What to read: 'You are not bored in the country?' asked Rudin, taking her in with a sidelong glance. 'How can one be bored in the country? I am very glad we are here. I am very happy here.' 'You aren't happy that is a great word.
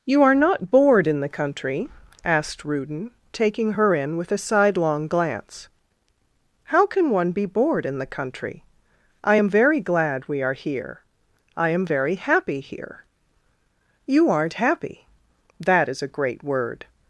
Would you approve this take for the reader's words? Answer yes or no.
yes